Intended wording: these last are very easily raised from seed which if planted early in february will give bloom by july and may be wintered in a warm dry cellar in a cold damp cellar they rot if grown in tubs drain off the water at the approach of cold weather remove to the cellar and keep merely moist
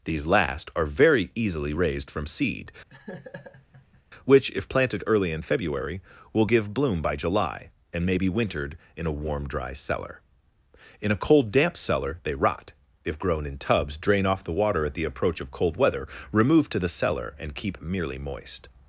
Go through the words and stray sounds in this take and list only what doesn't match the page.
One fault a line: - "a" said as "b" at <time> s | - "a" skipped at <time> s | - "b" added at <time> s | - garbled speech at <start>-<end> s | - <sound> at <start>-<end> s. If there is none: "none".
- laugh at 2.9-4.0 s